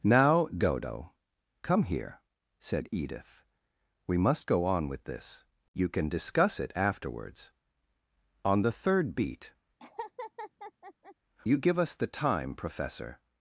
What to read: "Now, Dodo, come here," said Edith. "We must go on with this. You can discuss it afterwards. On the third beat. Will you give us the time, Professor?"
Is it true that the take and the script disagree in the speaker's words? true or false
true